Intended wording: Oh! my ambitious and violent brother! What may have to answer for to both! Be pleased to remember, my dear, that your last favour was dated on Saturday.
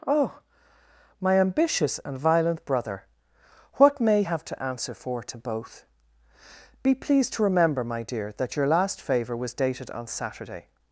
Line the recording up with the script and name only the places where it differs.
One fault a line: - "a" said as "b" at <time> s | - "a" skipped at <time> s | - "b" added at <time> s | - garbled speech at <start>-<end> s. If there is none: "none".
none